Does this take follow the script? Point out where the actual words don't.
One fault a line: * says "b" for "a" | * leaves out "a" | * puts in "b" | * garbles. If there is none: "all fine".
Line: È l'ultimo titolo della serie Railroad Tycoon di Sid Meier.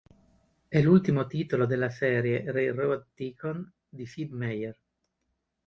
all fine